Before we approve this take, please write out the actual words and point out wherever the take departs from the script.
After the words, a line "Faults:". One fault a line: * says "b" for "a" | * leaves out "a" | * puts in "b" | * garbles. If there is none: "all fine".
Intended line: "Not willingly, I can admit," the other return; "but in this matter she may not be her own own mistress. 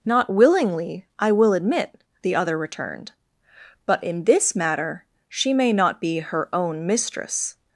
"Not willingly, I will admit," the other returned; "but in this matter she may not be her own mistress.
Faults:
* says "will" for "can"
* says "returned" for "return"
* leaves out "own"